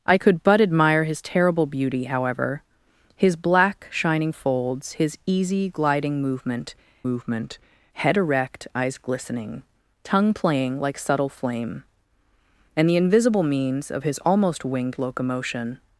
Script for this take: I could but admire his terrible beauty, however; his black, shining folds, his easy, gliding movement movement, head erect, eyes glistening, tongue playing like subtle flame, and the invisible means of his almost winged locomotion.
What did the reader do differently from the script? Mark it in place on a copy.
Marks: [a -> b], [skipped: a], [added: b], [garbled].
I could but admire his terrible beauty, however; his black, shining folds, his easy, gliding movement movement, head erect, eyes glistening, tongue playing like subtle flame, and the invisible means of his almost winged locomotion.